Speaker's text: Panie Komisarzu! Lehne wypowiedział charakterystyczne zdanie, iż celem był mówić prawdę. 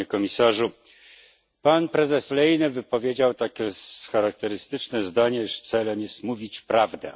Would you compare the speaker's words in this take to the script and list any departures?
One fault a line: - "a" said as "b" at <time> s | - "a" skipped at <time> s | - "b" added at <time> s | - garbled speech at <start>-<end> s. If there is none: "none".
- "Pan prezes" added at 1.6 s
- "takie" added at 3.3 s
- "był" said as "jest" at 6.0 s